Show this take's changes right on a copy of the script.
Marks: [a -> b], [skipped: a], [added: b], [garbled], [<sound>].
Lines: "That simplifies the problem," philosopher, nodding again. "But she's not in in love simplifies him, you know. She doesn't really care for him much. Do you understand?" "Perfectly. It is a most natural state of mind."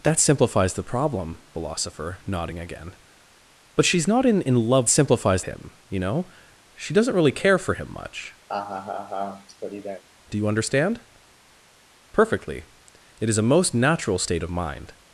"That simplifies the problem," philosopher, nodding again. "But she's not in in love simplifies him, you know. She doesn't really care for him much. [laugh] Do you understand?" "Perfectly. It is a most natural state of mind."